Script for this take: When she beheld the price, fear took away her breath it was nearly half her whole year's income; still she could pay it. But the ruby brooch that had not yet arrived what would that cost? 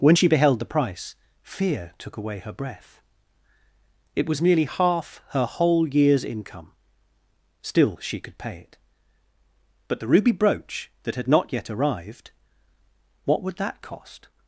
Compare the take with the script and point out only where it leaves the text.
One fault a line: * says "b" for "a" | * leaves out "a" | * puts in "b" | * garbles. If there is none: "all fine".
all fine